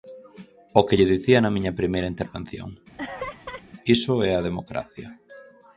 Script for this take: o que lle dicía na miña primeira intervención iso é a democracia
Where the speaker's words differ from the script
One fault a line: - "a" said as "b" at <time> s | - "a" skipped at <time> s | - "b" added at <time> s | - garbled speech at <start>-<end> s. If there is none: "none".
none